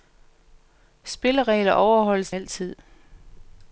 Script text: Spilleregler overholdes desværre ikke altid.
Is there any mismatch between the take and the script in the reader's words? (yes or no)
yes